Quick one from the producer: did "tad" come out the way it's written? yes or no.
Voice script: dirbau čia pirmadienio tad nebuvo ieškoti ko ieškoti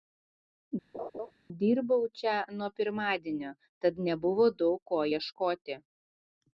yes